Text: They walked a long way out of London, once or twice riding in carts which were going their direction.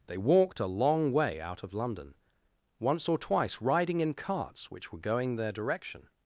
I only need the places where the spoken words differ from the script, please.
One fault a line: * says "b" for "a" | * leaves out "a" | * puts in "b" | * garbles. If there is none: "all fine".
all fine